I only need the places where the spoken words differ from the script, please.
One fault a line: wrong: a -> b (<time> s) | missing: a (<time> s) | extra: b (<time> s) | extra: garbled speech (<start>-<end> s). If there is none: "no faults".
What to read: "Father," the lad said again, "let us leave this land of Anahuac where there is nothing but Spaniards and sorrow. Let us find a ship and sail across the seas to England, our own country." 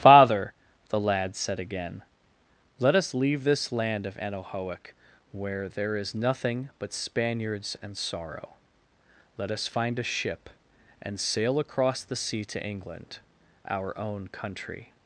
wrong: seas -> sea (12.1 s)